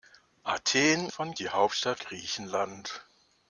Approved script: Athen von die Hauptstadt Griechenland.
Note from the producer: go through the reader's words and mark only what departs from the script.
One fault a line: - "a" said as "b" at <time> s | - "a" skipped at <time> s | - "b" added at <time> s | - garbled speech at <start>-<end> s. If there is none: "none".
none